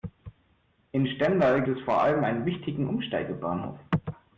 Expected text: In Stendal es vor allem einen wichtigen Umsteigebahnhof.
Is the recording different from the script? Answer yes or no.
no